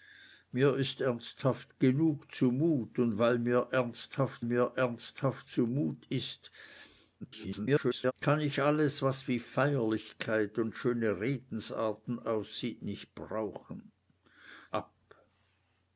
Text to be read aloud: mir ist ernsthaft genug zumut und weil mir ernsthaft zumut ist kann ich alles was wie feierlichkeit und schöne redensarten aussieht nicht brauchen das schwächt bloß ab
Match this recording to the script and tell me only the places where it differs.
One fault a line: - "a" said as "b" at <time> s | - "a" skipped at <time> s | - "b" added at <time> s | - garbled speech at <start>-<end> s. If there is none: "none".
- "mir ernsthaft" added at 4.4 s
- garbled speech at 7.2-8.1 s
- "das schwächt bloß" skipped at 13.9 s